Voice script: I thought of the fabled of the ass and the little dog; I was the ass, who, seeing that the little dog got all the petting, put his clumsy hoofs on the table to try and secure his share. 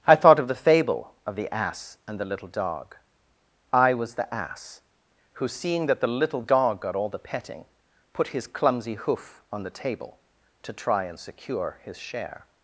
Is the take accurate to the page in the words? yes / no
no